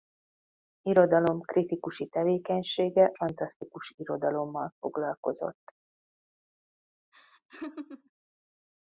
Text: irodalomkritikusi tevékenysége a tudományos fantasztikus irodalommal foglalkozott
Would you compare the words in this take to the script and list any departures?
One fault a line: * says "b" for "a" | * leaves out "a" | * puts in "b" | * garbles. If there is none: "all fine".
* leaves out "a tudományos"